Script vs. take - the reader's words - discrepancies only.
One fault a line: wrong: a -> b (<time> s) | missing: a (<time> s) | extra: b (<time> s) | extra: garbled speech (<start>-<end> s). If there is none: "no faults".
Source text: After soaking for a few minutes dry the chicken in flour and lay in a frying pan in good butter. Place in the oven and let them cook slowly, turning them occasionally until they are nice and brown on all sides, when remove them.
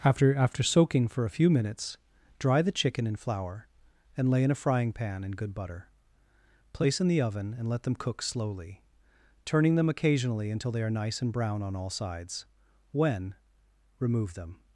extra: after (0.3 s)